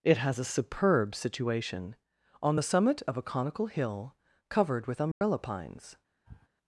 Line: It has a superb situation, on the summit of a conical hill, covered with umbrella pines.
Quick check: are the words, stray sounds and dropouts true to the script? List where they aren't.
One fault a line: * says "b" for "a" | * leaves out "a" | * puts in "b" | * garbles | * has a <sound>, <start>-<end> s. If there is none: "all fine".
* has a dropout, 5.1-5.2 s
* has a sniff, 6.3-6.5 s